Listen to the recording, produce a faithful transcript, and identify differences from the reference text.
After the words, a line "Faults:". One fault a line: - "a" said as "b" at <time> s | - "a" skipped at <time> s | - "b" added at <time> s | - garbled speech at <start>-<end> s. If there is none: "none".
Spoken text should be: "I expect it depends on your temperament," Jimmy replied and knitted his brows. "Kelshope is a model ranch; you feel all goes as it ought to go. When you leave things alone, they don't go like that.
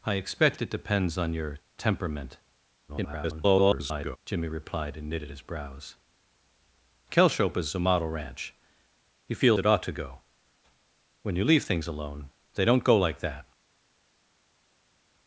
"I expect it depends on your temperament," [garbled] Jimmy replied and knitted his brows. "Kelshope is a model ranch; you feel it ought to go. When you leave things alone, they don't go like that.
Faults:
- garbled speech at 2.9-4.2 s
- "all goes as" skipped at 9.6 s